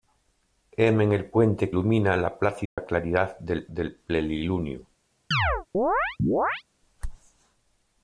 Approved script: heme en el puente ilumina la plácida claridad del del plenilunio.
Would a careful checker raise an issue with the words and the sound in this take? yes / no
yes